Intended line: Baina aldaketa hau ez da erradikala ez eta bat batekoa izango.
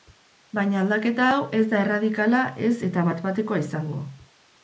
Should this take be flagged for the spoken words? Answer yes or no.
no